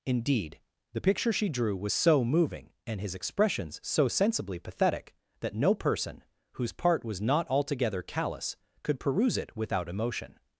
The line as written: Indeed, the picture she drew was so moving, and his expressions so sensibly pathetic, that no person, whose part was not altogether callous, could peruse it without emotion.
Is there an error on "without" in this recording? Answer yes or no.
no